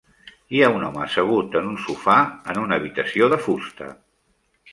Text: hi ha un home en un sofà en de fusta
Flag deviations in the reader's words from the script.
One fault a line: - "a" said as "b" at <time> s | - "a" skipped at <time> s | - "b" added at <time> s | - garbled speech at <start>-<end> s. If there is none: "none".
- "assegut" added at 1.1 s
- "una habitació" added at 2.7 s